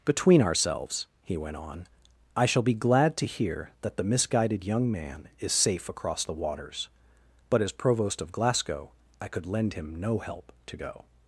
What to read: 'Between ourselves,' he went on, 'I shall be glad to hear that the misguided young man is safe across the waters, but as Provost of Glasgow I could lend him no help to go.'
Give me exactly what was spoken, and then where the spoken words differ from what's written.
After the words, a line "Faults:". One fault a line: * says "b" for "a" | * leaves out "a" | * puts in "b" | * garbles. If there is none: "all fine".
'Between ourselves,' he went on, 'I shall be glad to hear that the misguided young man is safe across the waters, but as Provost of Glasgow I could lend him no help to go.'
Faults:
all fine